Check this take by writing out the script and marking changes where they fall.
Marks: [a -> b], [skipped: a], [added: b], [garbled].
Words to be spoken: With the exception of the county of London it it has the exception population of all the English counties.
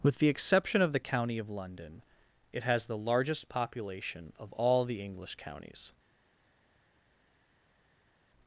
With the exception of the county of London it [skipped: it] has the [exception -> largest] population of all the English counties.